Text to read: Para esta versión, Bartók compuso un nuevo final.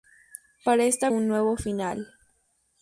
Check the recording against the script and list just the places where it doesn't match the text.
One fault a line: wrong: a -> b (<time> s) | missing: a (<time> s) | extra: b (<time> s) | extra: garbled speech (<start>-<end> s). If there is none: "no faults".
missing: versión Bartók compuso (1.1 s)